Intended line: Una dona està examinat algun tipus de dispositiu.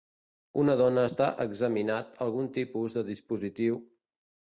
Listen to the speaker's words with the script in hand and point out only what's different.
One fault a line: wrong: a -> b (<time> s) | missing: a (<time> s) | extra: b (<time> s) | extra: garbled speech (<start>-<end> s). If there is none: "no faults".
no faults